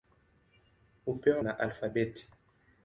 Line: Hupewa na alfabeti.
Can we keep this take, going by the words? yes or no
yes